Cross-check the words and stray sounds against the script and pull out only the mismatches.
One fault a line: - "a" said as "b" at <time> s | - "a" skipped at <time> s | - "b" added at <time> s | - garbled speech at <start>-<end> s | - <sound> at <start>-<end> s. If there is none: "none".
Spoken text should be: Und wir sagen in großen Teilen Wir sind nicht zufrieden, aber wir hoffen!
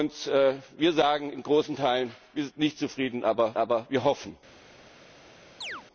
- "aber" added at 3.5 s
- chirp at 5.6-5.8 s